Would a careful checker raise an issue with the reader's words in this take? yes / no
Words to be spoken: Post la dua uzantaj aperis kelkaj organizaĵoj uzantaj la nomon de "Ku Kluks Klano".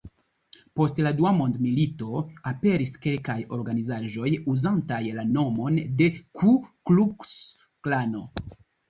yes